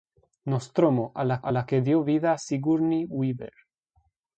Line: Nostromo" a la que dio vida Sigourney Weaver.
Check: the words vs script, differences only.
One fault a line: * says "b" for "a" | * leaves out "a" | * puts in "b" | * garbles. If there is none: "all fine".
* puts in "a la"